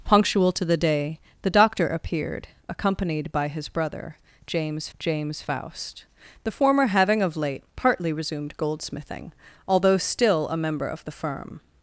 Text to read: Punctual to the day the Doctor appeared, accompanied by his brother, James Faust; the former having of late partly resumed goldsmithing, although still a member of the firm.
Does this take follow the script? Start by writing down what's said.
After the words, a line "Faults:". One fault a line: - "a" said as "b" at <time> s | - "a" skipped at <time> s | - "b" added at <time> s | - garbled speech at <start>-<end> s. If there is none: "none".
Punctual to the day the Doctor appeared, accompanied by his brother, James James Faust; the former having of late partly resumed goldsmithing, although still a member of the firm.
Faults:
- "James" added at 5.0 s